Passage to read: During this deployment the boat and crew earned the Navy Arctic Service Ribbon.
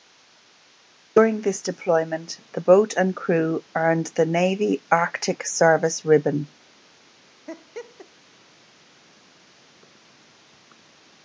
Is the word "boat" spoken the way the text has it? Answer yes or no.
yes